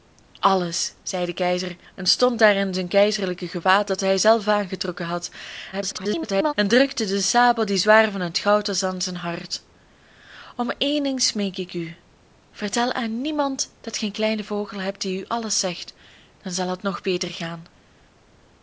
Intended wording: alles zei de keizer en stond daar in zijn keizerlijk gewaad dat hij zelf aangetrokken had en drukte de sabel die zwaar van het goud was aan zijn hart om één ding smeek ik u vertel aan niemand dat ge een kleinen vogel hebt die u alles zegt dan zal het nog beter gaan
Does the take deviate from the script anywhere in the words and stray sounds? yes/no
yes